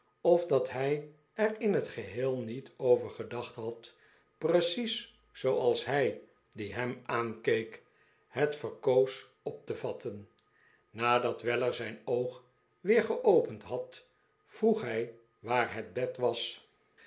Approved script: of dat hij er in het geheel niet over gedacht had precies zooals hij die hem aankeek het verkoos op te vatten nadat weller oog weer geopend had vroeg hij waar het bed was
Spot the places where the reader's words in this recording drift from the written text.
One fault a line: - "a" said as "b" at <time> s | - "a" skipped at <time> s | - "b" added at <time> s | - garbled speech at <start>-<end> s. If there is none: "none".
- "zijn" added at 11.7 s